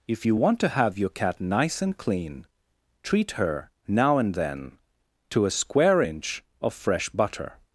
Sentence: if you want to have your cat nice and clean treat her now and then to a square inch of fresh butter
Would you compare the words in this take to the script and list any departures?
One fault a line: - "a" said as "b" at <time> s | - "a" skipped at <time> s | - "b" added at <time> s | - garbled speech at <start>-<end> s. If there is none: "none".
none